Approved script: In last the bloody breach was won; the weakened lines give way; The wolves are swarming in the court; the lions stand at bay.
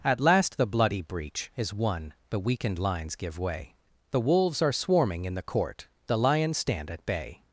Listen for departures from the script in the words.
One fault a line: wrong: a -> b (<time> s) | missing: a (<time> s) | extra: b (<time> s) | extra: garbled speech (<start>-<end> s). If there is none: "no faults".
wrong: In -> At (0.0 s)
wrong: was -> is (1.6 s)